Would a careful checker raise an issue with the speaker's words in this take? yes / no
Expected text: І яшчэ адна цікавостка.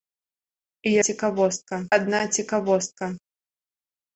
yes